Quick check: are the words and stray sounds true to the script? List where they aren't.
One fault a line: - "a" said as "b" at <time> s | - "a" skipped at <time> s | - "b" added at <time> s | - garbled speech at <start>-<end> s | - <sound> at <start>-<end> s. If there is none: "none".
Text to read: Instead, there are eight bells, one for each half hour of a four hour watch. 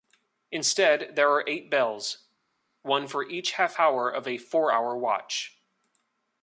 none